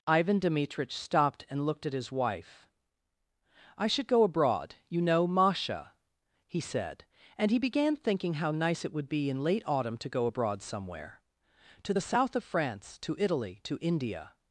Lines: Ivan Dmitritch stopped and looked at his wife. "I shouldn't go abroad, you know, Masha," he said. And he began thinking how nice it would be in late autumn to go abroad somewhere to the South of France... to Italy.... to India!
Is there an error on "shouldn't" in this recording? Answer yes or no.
yes